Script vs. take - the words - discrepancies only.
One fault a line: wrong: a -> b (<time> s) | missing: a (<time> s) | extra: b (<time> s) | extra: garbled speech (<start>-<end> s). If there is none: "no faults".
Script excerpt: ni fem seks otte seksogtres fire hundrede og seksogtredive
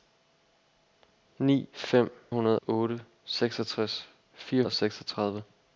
wrong: seks -> hundrede (2.3 s)
missing: hundrede (4.6 s)